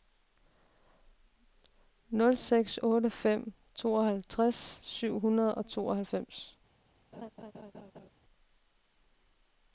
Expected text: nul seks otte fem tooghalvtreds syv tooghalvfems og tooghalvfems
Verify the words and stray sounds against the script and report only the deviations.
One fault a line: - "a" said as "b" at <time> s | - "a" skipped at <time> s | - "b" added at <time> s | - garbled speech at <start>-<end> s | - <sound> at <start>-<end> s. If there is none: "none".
- "tooghalvfems" said as "hundrede" at 5.2 s
- laugh at 7.1-8.1 s